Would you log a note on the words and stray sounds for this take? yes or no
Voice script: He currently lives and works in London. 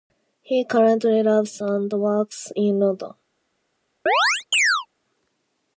yes